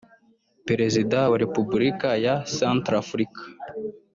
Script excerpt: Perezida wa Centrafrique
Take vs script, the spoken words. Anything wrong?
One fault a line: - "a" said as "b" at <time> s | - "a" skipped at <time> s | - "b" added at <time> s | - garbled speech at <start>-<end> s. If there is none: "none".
- "Repubulika ya" added at 1.4 s